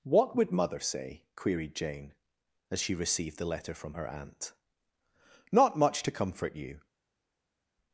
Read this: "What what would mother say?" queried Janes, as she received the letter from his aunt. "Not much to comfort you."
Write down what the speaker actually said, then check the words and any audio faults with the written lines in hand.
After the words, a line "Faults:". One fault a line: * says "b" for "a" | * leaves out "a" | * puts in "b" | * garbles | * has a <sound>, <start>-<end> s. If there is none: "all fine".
"What would mother say?" queried Jane, as she received the letter from her aunt. "Not much to comfort you."
Faults:
* leaves out "what"
* says "Jane" for "Janes"
* says "her" for "his"